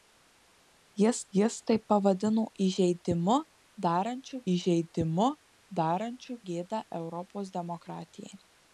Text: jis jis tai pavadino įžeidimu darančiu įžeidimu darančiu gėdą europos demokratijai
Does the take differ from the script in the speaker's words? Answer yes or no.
no